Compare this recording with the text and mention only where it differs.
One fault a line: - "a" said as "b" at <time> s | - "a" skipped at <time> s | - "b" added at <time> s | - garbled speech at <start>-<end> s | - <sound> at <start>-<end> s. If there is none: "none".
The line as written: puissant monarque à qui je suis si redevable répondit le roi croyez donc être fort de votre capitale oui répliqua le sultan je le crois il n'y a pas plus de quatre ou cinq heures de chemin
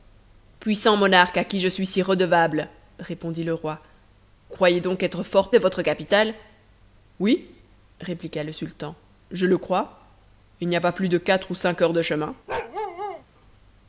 - bark at 12.5-13.2 s